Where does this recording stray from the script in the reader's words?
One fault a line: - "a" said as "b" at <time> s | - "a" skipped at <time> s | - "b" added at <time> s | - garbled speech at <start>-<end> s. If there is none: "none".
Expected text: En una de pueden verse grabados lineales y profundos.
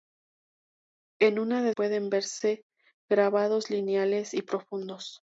none